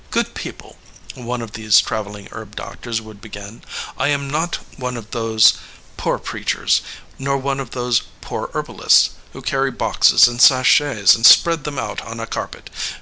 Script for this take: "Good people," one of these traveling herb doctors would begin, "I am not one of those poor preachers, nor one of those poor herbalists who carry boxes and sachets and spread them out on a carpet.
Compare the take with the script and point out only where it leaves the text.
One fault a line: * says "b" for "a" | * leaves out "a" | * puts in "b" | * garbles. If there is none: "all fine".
all fine